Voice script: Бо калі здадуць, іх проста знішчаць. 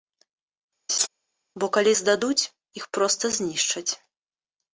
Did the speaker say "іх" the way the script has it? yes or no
yes